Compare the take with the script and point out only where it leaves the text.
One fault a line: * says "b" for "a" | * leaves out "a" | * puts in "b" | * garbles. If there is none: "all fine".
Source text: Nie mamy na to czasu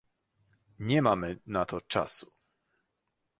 all fine